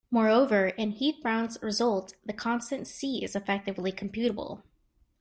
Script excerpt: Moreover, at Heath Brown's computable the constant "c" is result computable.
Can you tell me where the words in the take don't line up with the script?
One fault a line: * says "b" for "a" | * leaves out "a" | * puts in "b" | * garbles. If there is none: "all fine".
* says "in" for "at"
* says "result" for "computable"
* says "effectively" for "result"